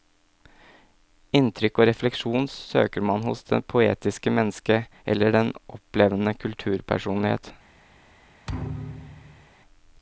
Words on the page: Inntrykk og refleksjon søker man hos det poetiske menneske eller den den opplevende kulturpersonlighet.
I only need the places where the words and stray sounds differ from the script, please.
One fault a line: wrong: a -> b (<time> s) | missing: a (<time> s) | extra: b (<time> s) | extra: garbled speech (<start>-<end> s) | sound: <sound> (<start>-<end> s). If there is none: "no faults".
missing: den (5.5 s)
sound: thud (8.5-9.5 s)